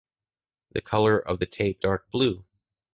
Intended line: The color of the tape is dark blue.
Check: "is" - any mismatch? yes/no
yes